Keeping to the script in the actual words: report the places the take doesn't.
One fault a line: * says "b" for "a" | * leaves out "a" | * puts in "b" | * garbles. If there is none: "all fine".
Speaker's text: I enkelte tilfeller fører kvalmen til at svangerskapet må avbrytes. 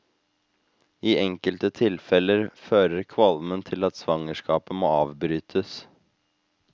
all fine